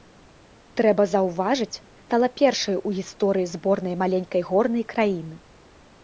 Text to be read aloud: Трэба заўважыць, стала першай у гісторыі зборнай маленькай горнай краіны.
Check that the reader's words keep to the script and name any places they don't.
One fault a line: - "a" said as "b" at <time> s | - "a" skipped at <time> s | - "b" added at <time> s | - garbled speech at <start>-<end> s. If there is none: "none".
none